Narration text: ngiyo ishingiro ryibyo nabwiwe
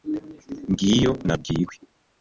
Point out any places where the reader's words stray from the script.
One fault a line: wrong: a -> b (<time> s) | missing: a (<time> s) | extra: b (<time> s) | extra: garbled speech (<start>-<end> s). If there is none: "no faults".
missing: ishingiro ryibyo (1.1 s)